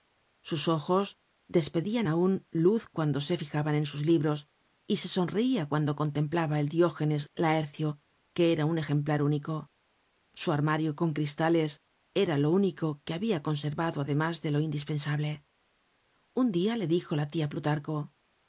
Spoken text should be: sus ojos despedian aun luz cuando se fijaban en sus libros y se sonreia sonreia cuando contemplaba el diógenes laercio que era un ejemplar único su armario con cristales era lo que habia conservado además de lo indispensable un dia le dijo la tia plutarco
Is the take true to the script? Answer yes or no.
no